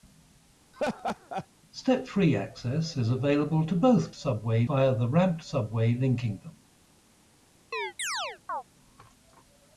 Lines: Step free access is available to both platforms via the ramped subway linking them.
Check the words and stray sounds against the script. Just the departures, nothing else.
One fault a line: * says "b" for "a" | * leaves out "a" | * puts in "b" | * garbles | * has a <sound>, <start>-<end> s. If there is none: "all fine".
* has a laugh, 0.7-1.5 s
* says "subway" for "platforms"
* has a chirp, 7.7-8.6 s